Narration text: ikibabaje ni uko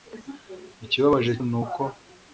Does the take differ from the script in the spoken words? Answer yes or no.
no